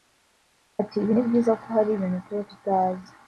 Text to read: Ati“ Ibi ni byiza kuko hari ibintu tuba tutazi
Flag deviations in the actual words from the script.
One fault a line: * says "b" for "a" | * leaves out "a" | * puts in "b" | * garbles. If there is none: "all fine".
all fine